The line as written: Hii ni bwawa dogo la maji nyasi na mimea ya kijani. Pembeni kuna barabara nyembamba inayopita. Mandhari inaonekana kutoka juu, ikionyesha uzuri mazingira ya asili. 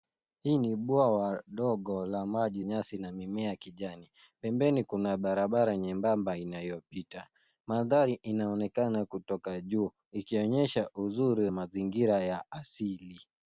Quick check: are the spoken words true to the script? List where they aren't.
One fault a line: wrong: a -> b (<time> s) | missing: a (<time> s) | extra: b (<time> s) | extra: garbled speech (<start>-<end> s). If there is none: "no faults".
no faults